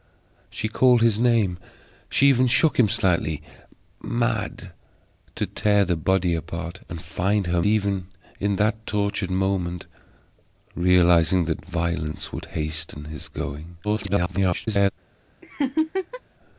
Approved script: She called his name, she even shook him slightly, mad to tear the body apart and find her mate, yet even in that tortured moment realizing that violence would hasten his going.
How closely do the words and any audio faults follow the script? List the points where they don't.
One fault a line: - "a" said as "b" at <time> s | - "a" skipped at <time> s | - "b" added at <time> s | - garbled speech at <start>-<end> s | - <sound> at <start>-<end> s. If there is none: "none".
- "mate yet" skipped at 7.6 s
- garbled speech at 13.8-14.9 s
- laugh at 15.4-16.2 s